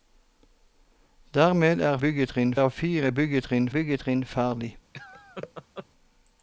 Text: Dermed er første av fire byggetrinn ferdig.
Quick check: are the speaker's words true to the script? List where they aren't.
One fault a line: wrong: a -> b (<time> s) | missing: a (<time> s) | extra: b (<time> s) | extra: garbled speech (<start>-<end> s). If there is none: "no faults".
wrong: første -> byggetrinn (2.0 s)
extra: byggetrinn (3.7 s)